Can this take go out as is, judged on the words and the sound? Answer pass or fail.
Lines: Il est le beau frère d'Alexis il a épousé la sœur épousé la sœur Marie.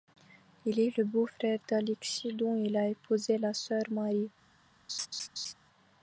fail